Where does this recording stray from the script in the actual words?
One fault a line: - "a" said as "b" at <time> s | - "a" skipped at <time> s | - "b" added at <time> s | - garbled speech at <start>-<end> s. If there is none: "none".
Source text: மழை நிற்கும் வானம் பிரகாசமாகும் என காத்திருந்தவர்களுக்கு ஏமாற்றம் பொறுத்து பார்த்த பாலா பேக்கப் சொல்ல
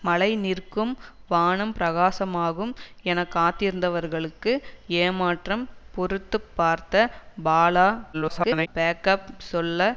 - garbled speech at 8.1-8.7 s